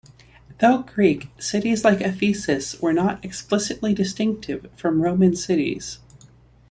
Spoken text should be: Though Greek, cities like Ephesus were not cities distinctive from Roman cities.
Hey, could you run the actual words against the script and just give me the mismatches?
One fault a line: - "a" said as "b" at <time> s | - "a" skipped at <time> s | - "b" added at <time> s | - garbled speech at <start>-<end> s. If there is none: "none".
- "cities" said as "explicitly" at 3.2 s